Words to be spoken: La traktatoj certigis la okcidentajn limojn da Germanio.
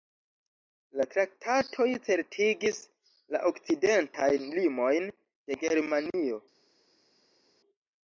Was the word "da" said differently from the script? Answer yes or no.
yes